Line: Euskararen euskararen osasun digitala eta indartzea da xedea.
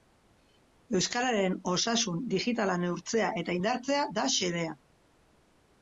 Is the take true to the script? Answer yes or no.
no